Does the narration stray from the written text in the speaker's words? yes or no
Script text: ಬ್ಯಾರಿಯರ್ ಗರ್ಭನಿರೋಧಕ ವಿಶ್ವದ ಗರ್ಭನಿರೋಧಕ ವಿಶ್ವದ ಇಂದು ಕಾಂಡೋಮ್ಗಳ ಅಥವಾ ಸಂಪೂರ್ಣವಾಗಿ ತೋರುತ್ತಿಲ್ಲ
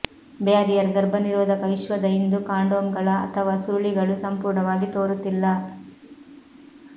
yes